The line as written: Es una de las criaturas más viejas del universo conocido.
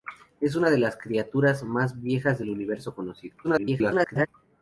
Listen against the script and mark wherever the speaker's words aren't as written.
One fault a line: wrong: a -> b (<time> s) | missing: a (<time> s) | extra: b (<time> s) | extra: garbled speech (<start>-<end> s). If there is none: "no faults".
extra: garbled speech (3.4-4.3 s)